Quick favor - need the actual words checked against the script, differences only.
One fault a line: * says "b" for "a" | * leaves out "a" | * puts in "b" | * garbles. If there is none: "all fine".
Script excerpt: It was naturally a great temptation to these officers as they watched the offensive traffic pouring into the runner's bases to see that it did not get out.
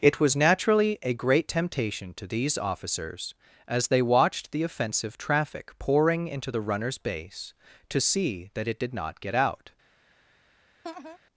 * says "base" for "bases"